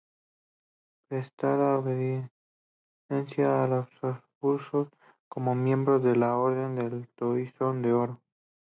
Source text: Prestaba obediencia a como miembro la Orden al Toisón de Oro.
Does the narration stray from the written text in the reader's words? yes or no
yes